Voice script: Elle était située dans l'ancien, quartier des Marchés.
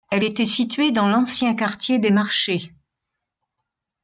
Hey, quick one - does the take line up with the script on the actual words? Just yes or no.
yes